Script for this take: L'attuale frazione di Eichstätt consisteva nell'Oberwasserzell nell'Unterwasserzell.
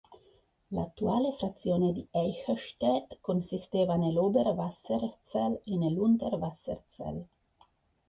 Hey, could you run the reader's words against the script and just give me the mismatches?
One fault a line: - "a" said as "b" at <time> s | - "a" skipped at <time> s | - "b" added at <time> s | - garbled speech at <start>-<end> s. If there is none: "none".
- "e" added at 5.6 s